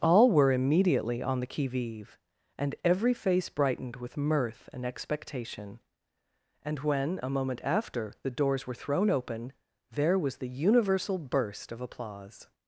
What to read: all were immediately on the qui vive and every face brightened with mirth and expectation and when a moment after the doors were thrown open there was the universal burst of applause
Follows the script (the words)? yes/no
yes